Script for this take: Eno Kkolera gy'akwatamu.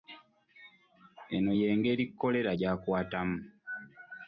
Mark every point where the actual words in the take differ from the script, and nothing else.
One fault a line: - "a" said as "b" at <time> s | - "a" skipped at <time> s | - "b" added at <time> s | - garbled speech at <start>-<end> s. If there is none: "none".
- "y'engeri" added at 1.6 s